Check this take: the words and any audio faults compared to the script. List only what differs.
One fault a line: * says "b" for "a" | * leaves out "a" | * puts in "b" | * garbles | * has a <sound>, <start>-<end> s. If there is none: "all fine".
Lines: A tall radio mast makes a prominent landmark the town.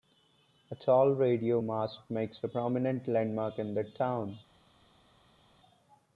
* puts in "in"